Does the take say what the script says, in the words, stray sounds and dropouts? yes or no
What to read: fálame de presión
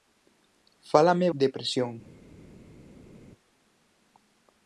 yes